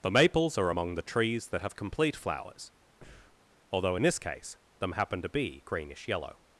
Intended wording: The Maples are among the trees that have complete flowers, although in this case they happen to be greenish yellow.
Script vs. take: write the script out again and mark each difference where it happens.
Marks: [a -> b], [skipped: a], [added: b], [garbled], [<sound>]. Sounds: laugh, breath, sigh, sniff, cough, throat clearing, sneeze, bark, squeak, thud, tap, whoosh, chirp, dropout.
The Maples are among the trees that have complete flowers, [breath] although in this case [they -> them] happen to be greenish yellow.